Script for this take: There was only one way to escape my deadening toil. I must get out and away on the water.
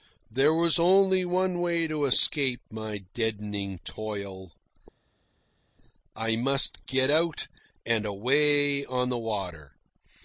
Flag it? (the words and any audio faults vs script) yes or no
no